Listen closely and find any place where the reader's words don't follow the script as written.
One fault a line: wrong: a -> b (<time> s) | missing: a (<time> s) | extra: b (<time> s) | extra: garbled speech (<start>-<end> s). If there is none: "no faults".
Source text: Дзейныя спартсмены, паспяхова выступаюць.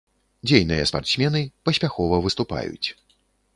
no faults